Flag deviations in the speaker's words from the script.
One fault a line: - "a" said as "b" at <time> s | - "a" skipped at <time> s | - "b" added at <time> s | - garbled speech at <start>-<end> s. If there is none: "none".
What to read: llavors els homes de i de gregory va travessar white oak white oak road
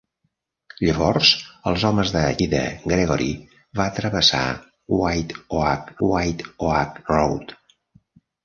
none